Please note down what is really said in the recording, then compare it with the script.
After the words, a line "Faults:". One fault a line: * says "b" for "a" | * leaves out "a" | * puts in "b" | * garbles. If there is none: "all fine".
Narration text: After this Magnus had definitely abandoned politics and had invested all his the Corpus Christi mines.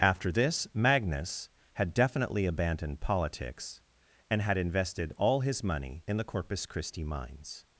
After this Magnus had definitely abandoned politics and had invested all his money in the Corpus Christi mines.
Faults:
* puts in "money in"